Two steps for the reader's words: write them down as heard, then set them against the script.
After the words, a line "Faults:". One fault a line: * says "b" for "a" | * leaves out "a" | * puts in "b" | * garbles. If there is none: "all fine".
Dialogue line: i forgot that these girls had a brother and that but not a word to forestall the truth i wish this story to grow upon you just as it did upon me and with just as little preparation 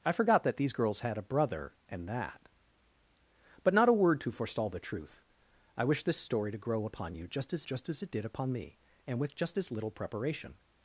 i forgot that these girls had a brother and that but not a word to forestall the truth i wish this story to grow upon you just as just as it did upon me and with just as little preparation
Faults:
* puts in "just as"